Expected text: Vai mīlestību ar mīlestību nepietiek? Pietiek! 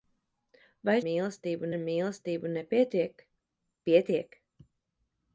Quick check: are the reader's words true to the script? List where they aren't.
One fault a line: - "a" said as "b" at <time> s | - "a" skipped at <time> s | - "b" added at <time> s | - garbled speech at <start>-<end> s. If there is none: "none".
none